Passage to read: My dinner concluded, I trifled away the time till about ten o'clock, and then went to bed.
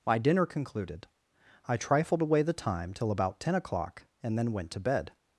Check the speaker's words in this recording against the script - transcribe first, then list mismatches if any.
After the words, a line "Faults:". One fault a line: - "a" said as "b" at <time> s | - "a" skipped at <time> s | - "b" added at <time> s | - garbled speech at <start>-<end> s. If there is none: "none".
My dinner concluded, I trifled away the time till about ten o'clock, and then went to bed.
Faults:
none